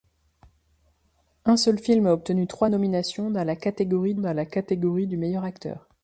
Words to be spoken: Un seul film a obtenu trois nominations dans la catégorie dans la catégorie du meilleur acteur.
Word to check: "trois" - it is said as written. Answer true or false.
true